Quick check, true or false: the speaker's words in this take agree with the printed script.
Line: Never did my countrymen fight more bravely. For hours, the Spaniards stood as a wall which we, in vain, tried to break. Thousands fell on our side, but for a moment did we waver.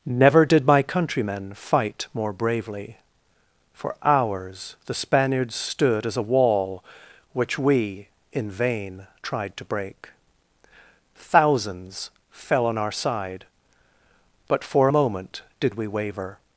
true